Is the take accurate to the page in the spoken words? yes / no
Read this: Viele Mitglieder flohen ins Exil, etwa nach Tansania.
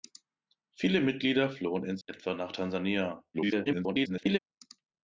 no